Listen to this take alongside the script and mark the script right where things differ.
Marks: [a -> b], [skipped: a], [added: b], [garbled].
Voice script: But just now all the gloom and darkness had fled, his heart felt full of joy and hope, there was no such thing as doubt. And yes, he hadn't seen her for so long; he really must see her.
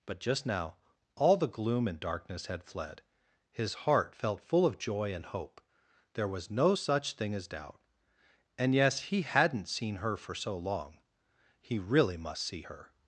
But just now all the gloom and darkness had fled, his heart felt full of joy and hope, there was no such thing as doubt. And yes, he hadn't seen her for so long; he really must see her.